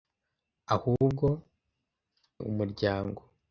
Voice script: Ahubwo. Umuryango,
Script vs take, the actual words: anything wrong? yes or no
no